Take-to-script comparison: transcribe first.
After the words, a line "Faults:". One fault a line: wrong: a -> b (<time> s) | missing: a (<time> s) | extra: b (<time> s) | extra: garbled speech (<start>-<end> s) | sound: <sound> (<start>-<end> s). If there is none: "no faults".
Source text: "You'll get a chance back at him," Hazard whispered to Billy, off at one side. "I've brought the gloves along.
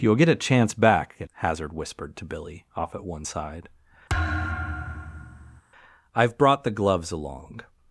"You'll get a chance back at," Hazard whispered to Billy, off at one side. "I've brought the gloves along.
Faults:
missing: him (1.3 s)
sound: thud (4.1-5.6 s)